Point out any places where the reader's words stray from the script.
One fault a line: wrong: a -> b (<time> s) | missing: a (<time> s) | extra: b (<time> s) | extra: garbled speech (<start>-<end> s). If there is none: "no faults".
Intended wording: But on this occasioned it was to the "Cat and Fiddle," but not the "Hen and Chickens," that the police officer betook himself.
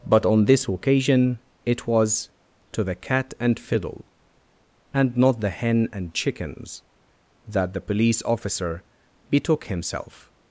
wrong: occasioned -> occasion (0.7 s)
wrong: but -> and (4.9 s)